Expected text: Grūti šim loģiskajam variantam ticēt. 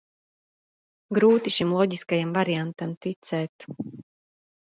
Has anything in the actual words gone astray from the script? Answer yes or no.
no